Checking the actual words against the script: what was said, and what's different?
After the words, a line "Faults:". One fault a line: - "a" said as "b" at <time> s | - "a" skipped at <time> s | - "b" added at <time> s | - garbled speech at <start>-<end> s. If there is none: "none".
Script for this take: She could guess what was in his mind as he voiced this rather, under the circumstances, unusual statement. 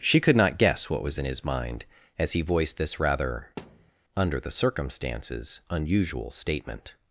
She could not guess what was in his mind as he voiced this rather, under the circumstances, unusual statement.
Faults:
- "not" added at 0.3 s